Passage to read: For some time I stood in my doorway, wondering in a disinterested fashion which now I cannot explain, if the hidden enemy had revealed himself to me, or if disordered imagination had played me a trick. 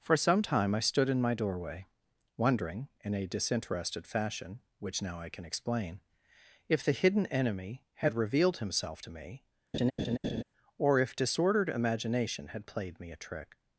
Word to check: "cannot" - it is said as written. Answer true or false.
false